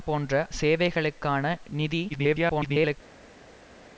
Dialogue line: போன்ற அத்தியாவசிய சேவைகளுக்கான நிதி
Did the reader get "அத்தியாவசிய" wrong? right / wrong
wrong